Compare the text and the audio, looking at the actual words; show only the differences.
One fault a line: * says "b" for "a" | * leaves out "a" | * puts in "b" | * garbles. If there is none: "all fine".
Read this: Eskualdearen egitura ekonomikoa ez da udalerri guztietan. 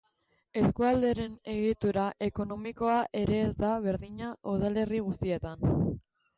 * puts in "ere"
* puts in "berdina"